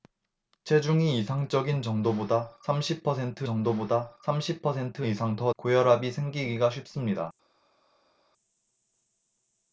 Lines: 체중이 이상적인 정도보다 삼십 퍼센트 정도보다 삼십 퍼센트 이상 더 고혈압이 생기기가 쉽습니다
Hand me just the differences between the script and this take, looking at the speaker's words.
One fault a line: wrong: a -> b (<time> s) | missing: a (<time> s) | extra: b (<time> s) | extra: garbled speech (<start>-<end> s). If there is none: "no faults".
no faults